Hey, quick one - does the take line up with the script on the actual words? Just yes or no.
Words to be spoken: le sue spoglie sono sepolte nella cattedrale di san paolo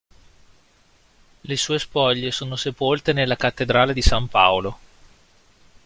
yes